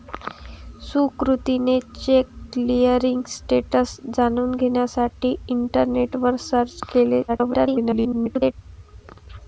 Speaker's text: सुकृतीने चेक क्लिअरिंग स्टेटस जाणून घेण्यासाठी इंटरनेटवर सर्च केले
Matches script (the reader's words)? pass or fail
fail